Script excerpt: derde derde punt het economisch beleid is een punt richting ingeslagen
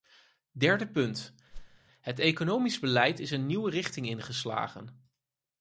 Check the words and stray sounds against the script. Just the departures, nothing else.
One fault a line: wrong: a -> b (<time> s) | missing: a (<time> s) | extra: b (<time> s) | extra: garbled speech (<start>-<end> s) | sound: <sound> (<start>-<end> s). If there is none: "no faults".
missing: derde (0.9 s)
sound: whoosh (1.5-1.8 s)
wrong: punt -> nieuwe (3.5 s)